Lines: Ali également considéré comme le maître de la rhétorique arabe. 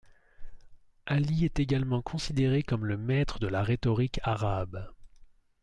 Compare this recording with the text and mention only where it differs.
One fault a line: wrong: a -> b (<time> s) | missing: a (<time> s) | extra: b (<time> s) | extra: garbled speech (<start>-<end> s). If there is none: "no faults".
extra: est (1.4 s)